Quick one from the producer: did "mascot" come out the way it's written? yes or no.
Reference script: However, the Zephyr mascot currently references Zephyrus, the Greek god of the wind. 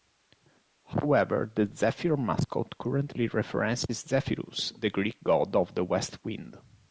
yes